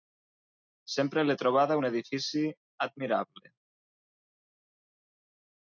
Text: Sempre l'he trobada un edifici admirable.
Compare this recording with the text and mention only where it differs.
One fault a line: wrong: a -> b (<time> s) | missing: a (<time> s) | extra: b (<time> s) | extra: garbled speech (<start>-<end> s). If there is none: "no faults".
no faults